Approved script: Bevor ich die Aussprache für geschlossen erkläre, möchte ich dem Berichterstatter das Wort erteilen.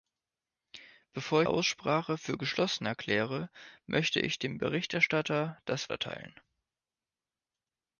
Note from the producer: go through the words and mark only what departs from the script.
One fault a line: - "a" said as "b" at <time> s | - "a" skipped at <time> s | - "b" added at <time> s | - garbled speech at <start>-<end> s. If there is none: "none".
- "ich die" skipped at 1.4 s
- "Wort" skipped at 5.9 s